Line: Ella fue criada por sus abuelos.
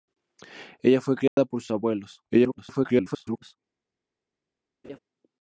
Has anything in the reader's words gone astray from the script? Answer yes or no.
yes